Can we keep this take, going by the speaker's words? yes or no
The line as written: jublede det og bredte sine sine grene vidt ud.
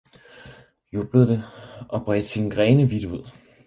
no